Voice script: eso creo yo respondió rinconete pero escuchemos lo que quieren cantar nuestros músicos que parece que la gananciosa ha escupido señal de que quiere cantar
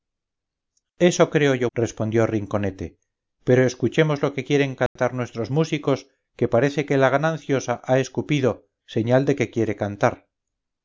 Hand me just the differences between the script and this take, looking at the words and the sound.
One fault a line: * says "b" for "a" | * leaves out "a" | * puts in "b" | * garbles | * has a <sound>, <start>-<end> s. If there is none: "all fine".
* has a dropout, 4.9-5.0 s